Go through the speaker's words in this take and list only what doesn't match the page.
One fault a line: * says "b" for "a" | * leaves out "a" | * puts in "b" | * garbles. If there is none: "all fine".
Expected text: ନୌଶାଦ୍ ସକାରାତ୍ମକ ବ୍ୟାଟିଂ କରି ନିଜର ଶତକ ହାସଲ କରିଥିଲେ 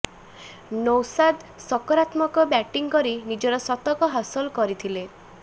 all fine